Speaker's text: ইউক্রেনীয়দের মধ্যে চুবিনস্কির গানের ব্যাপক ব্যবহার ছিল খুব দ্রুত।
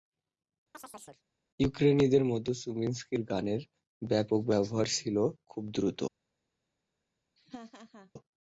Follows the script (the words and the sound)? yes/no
no